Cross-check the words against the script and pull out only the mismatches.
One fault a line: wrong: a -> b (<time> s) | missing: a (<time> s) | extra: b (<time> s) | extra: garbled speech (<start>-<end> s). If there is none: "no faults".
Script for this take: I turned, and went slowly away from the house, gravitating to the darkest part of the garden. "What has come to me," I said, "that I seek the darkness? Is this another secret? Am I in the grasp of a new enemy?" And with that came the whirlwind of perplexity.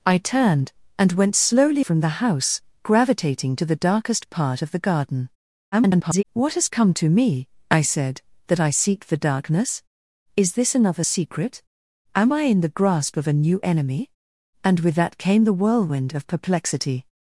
missing: away (1.9 s)
extra: garbled speech (5.7-6.2 s)